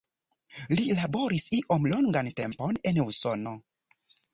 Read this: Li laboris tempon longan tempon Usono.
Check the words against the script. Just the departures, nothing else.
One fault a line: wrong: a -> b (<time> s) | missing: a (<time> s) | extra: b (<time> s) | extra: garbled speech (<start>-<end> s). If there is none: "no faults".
wrong: tempon -> iom (1.6 s)
extra: en (2.9 s)